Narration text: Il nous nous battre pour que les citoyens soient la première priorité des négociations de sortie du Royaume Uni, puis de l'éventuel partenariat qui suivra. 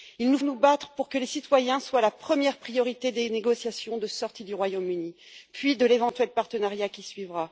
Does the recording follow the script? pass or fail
pass